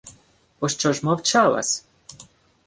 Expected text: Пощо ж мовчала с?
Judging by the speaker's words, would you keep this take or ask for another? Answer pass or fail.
pass